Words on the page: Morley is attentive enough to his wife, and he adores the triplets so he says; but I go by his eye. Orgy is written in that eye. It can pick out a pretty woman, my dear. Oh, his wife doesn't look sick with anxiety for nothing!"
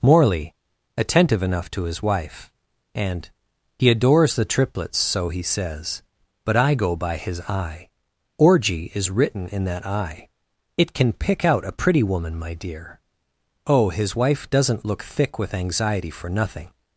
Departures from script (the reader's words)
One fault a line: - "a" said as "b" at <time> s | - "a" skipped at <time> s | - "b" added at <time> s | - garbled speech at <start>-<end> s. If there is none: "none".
- "is" skipped at 0.6 s
- "sick" said as "thick" at 15.0 s